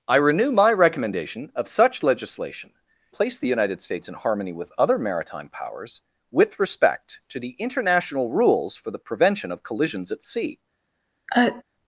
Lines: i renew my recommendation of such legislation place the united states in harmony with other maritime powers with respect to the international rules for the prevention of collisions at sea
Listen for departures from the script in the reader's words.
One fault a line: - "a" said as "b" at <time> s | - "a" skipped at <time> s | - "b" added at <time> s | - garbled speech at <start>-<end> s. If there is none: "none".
none